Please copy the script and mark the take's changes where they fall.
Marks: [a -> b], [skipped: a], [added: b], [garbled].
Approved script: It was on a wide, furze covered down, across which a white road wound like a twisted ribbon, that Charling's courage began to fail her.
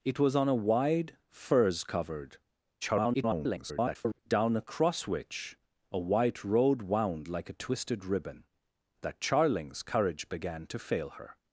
It was on a wide, furze covered [garbled] down, across which a white road wound like a twisted ribbon, that Charling's courage began to fail her.